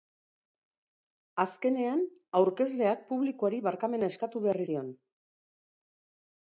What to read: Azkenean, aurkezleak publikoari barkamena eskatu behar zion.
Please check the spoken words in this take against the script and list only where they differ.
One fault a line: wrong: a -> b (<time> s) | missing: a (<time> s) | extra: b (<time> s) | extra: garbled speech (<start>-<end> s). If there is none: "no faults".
no faults